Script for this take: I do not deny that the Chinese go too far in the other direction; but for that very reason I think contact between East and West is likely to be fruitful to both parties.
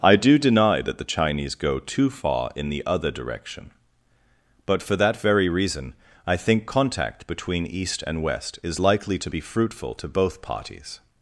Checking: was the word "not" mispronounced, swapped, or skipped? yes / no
yes